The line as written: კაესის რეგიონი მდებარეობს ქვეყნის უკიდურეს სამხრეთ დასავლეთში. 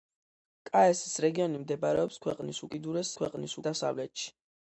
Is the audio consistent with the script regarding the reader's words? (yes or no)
no